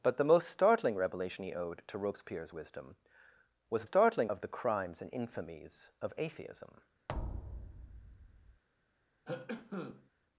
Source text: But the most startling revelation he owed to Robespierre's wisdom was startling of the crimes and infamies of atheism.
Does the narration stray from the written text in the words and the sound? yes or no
yes